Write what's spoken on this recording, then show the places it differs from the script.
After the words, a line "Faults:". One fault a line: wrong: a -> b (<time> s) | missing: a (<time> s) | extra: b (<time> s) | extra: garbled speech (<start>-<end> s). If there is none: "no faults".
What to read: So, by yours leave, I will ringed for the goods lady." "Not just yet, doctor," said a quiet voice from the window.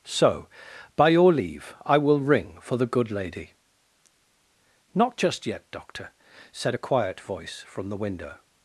So, by your leave, I will ring for the good lady." "Not just yet, doctor," said a quiet voice from the window.
Faults:
wrong: yours -> your (1.1 s)
wrong: ringed -> ring (2.2 s)
wrong: goods -> good (2.9 s)